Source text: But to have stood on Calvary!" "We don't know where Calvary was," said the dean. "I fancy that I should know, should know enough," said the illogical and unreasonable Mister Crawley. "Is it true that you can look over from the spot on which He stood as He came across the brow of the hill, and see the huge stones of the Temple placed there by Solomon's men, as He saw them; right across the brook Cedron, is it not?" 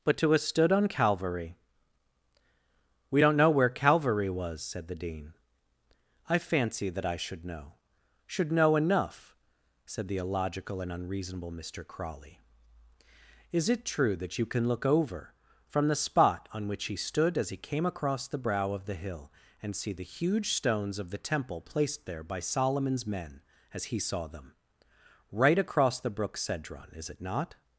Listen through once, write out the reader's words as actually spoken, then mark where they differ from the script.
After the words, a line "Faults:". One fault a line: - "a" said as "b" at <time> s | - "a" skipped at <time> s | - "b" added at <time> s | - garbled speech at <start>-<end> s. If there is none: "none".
But to have stood on Calvary!" "We don't know where Calvary was," said the dean. "I fancy that I should know, should know enough," said the illogical and unreasonable Mister Crawley. "Is it true that you can look over from the spot on which He stood as He came across the brow of the hill, and see the huge stones of the Temple placed there by Solomon's men, as He saw them; right across the brook Cedron, is it not?"
Faults:
none